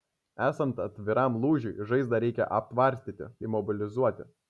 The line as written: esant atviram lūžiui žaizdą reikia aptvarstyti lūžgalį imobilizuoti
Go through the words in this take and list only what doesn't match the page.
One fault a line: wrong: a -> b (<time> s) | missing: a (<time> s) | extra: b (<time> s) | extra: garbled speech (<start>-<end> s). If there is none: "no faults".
missing: lūžgalį (3.3 s)